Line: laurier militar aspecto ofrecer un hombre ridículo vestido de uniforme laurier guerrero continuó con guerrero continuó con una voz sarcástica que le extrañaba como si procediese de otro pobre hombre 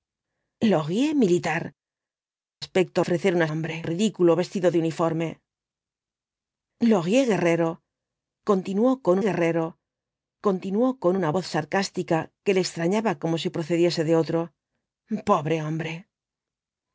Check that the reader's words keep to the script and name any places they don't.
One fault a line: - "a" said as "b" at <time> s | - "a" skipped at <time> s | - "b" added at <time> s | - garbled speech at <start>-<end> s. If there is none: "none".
none